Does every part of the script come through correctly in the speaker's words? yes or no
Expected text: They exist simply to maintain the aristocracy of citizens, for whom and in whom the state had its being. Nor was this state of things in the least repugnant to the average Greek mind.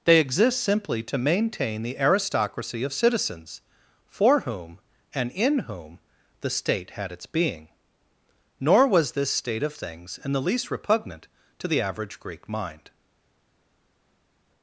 yes